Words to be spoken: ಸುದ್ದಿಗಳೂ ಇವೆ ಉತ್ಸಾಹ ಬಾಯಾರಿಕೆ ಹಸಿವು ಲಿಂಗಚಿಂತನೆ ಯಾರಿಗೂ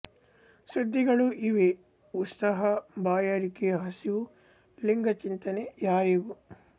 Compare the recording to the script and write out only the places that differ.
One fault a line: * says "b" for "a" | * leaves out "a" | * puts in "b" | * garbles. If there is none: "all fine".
all fine